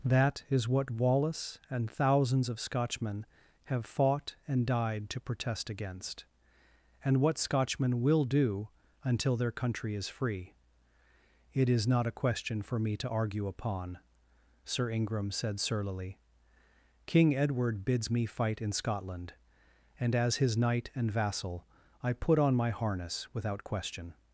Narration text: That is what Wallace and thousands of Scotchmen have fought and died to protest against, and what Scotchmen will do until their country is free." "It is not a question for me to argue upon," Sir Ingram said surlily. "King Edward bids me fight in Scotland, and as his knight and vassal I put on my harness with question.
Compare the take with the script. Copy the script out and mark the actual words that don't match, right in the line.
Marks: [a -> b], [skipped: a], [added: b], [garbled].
That is what Wallace and thousands of Scotchmen have fought and died to protest against, and what Scotchmen will do until their country is free." "It is not a question for me to argue upon," Sir Ingram said surlily. "King Edward bids me fight in Scotland, and as his knight and vassal I put on my harness [with -> without] question.